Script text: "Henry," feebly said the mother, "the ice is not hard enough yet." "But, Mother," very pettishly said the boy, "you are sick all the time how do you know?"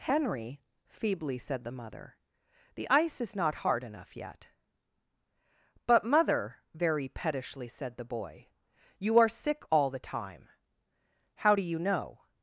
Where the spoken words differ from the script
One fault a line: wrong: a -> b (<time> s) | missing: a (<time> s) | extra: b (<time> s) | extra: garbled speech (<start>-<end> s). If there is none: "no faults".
no faults